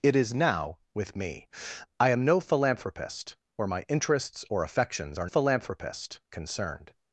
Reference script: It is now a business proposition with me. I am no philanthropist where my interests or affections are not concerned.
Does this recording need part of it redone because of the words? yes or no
yes